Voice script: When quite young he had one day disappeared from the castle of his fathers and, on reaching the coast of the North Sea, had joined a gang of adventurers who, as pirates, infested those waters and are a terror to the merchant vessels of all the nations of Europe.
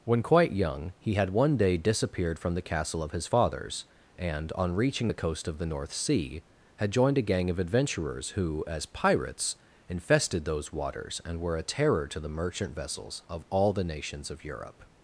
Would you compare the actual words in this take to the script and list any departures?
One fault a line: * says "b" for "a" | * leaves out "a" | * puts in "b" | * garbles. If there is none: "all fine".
* says "were" for "are"